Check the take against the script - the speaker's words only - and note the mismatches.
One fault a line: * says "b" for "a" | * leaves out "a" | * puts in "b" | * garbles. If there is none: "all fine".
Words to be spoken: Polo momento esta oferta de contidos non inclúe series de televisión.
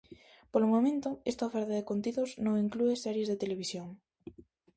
all fine